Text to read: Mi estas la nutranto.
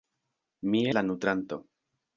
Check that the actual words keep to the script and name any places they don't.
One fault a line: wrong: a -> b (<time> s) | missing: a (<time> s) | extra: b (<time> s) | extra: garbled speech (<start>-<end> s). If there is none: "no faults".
missing: estas (0.8 s)